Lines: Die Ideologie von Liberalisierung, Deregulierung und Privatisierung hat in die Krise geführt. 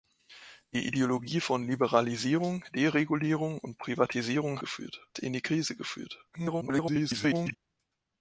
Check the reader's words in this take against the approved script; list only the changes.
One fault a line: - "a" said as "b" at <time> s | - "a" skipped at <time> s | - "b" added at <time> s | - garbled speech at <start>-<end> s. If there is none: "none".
- "hat" said as "geführt" at 4.6 s
- garbled speech at 6.3-7.5 s